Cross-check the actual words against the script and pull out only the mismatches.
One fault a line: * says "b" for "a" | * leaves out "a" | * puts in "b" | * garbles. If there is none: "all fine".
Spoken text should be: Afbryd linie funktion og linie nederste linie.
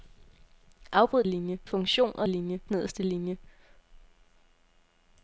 all fine